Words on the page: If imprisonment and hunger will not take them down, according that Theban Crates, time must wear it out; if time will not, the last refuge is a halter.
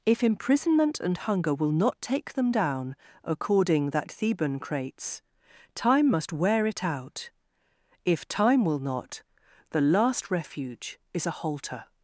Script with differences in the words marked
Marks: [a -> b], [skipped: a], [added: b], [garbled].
If imprisonment and hunger will not take them down, according that Theban Crates, time must wear it out; if time will not, the last refuge is a halter.